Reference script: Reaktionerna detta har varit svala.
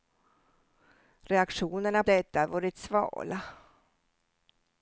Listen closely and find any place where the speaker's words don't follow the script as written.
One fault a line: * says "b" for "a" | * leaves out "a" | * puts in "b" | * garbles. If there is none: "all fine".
all fine